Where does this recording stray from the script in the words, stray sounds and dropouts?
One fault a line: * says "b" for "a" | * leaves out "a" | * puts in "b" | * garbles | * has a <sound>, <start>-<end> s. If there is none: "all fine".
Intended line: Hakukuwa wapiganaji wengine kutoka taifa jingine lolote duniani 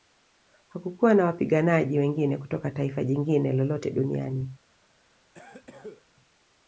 * puts in "na"
* has a cough, 5.3-6.0 s